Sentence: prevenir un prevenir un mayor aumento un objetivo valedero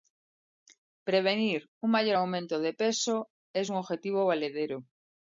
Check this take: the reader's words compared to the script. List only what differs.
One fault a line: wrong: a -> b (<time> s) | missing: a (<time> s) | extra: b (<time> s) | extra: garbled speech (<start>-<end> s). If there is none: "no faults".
wrong: prevenir un mayor aumento -> mayor aumento de peso es (1.9 s)